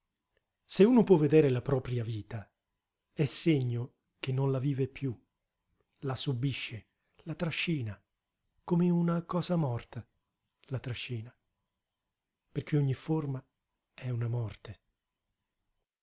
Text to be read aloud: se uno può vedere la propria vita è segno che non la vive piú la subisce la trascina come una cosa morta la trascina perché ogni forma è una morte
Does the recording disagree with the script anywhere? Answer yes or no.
no